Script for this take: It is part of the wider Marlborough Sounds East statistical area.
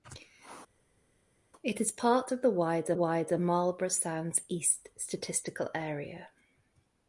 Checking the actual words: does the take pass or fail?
fail